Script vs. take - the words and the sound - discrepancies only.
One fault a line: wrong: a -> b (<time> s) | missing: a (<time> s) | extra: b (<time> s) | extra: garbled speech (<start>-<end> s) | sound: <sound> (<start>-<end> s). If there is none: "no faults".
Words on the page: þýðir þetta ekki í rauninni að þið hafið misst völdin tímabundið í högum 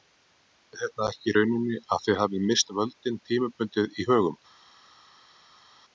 no faults